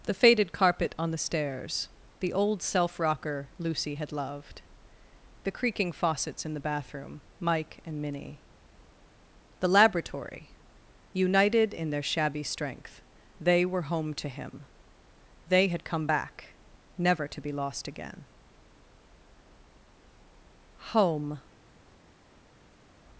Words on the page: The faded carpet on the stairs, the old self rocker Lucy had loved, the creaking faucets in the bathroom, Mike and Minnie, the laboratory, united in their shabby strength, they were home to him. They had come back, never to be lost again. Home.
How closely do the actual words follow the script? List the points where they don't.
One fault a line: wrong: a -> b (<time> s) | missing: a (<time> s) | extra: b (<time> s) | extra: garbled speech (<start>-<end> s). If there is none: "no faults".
no faults